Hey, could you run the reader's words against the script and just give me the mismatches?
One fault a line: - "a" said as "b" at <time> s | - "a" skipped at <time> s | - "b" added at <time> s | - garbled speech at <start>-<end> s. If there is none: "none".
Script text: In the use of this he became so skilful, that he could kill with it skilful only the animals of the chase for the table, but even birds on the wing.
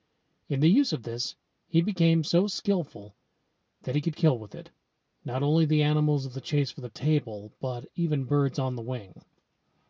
- "skilful" said as "not" at 5.3 s